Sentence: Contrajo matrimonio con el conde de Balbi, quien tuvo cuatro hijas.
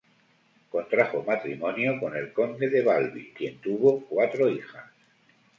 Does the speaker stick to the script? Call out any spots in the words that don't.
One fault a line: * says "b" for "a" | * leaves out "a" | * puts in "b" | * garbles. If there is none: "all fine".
all fine